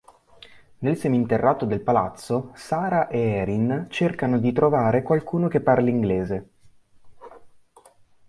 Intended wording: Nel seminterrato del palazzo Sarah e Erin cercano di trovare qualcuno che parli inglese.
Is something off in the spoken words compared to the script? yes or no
no